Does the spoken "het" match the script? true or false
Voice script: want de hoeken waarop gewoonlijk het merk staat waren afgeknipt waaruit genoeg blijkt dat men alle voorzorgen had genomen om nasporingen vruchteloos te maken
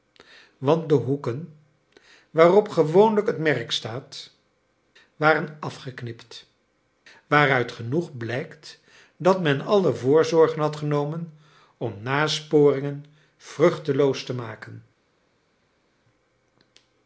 true